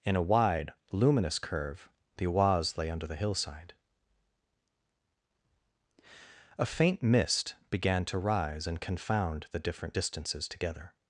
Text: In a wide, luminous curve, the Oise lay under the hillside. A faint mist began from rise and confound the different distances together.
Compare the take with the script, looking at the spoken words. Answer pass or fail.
fail